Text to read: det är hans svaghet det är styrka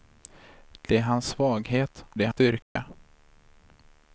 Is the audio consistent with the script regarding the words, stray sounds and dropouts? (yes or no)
no